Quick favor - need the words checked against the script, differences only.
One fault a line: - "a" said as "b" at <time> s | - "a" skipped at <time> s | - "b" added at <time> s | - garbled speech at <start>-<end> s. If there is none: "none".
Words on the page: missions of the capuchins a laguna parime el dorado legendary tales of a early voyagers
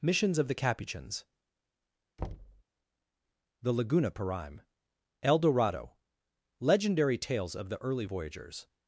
- "a" said as "the" at 3.6 s
- "a" said as "the" at 7.7 s